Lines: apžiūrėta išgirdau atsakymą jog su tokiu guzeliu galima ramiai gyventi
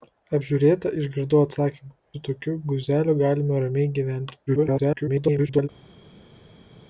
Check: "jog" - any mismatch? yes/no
yes